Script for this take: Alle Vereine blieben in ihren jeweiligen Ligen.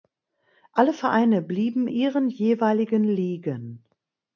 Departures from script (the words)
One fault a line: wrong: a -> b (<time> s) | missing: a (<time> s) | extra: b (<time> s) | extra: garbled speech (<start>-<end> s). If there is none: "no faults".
missing: in (1.9 s)